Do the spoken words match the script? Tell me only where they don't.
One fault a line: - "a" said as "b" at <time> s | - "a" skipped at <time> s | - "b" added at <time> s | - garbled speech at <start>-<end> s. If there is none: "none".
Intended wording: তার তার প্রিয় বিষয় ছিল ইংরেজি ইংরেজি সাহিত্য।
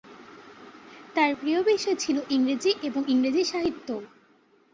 - "তার" skipped at 1.3 s
- "এবং" added at 2.8 s